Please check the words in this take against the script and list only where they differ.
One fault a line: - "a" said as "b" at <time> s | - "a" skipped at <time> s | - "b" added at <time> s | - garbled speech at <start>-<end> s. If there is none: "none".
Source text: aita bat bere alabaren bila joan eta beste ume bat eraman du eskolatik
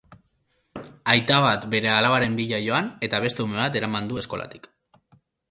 none